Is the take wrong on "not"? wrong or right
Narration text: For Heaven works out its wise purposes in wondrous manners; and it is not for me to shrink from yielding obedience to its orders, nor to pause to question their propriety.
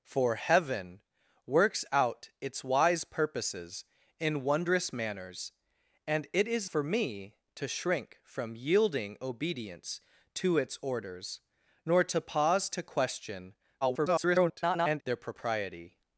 wrong